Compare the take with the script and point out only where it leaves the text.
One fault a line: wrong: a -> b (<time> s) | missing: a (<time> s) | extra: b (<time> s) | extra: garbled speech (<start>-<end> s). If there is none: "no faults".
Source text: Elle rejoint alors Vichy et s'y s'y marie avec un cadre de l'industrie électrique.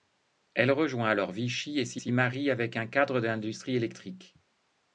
no faults